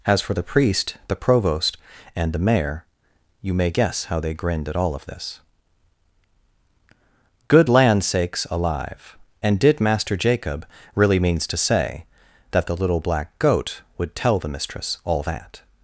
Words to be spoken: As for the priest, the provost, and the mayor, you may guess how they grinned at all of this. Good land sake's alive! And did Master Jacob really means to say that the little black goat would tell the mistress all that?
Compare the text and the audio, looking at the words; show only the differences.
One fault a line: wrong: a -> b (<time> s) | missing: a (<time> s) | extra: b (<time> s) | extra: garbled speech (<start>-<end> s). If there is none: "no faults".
no faults